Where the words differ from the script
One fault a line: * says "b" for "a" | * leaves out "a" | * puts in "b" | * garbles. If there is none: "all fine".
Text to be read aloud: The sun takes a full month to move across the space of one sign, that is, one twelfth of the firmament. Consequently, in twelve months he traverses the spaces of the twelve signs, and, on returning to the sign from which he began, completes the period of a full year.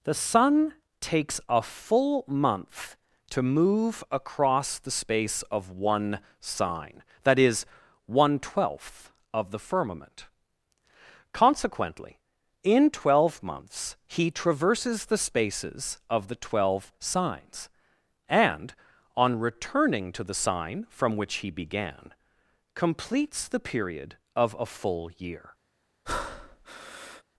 all fine